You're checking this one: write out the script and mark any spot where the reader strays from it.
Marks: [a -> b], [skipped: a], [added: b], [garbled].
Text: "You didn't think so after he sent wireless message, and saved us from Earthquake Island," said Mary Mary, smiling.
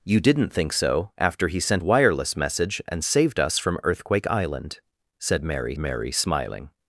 "You didn't think so after he sent wireless message, and saved us from Earthquake Island," said Mary Mary, smiling.